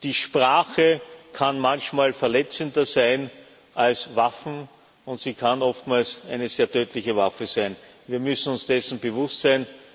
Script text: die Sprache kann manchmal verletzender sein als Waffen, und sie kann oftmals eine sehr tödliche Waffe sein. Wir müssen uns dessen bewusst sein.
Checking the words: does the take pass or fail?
pass